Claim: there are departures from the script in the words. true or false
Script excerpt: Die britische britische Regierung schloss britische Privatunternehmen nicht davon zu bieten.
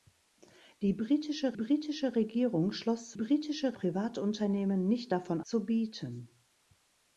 false